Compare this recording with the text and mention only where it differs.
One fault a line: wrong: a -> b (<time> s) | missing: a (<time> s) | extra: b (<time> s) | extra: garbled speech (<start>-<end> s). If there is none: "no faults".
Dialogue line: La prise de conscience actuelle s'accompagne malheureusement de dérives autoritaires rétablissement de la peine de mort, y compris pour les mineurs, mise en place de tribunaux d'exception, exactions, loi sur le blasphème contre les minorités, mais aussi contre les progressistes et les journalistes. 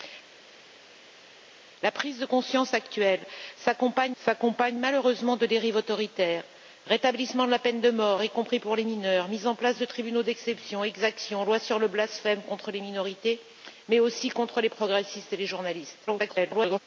extra: s'accompagne (4.2 s)
extra: garbled speech (16.1-16.8 s)